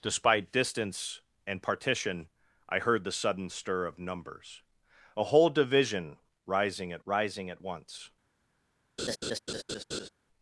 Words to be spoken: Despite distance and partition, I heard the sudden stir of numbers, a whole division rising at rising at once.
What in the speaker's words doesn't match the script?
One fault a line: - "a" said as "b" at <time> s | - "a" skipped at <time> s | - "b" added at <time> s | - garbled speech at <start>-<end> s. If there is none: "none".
none